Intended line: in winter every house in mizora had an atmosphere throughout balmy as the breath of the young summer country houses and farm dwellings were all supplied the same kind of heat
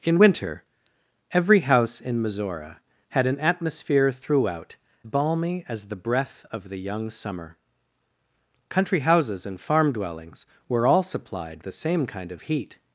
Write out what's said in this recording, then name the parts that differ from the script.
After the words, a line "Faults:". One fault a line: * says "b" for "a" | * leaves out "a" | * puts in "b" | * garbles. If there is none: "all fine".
in winter every house in mizora had an atmosphere throughout balmy as the breath of the young summer country houses and farm dwellings were all supplied the same kind of heat
Faults:
all fine